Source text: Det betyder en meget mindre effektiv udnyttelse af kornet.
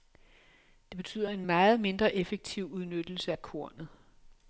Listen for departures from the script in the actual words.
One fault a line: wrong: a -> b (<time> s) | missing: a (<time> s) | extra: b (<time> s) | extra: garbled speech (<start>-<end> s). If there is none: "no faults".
no faults